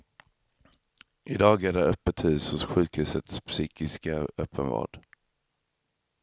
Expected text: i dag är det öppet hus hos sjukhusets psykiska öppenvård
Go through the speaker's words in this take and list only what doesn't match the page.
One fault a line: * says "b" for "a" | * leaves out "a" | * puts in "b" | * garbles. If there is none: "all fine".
all fine